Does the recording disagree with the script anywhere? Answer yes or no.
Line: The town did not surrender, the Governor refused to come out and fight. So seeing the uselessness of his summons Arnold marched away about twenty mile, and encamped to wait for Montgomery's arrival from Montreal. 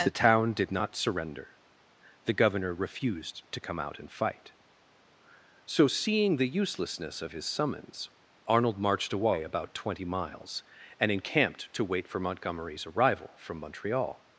yes